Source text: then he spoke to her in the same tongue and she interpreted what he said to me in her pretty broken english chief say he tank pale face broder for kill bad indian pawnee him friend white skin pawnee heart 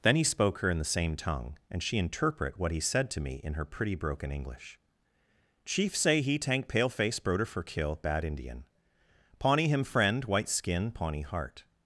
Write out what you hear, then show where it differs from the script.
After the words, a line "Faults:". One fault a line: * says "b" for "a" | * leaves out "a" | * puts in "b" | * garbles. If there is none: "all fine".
then he spoke her in the same tongue and she interpret what he said to me in her pretty broken english chief say he tank pale face broder for kill bad indian pawnee him friend white skin pawnee heart
Faults:
* leaves out "to"
* says "interpret" for "interpreted"